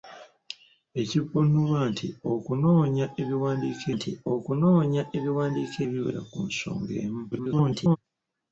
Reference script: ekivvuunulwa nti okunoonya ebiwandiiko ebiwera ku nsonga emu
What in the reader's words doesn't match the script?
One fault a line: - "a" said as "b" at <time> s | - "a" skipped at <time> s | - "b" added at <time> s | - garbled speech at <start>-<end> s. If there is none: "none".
- "nti okunoonya ebiwandiiko" added at 4.0 s
- garbled speech at 7.3-8.0 s